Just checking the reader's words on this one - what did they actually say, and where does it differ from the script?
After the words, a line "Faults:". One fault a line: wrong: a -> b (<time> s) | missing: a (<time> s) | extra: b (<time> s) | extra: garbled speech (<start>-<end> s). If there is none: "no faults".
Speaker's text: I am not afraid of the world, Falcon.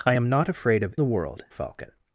I am not afraid of the world, Falcon.
Faults:
no faults